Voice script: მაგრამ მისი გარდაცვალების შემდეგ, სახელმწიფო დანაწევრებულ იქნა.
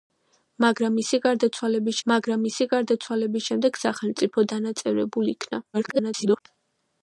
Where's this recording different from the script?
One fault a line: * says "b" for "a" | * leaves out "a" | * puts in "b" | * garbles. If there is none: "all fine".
* puts in "მაგრამ მისი გარდაცვალების"
* garbles